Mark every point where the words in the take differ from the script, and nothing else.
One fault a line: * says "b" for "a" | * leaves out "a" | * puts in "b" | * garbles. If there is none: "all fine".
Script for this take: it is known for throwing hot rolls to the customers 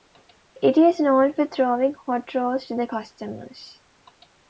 all fine